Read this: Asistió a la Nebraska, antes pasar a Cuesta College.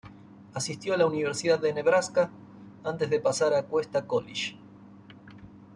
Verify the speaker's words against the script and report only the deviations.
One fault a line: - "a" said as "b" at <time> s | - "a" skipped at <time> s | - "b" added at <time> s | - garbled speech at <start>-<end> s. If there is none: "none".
- "Universidad de" added at 1.0 s
- "de" added at 3.1 s